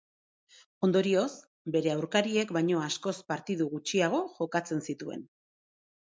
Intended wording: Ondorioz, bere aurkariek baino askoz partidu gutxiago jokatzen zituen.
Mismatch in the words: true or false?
false